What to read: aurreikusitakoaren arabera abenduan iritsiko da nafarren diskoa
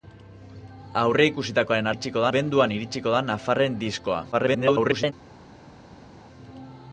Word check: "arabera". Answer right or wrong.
wrong